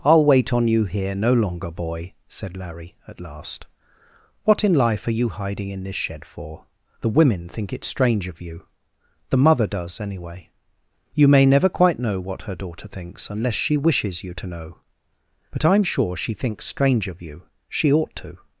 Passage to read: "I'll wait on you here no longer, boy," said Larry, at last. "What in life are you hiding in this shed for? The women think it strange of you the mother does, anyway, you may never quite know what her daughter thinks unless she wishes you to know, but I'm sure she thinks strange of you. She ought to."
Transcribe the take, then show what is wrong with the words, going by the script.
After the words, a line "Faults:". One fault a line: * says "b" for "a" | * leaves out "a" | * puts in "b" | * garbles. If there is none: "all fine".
"I'll wait on you here no longer, boy," said Larry, at last. "What in life are you hiding in this shed for? The women think it strange of you the mother does, anyway, you may never quite know what her daughter thinks unless she wishes you to know, but I'm sure she thinks strange of you. She ought to."
Faults:
all fine